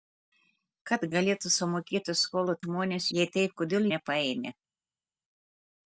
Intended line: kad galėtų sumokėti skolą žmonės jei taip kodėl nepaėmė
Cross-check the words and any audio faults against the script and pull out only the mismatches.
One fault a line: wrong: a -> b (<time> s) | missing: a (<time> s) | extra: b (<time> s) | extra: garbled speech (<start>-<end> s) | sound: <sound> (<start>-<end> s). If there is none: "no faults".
no faults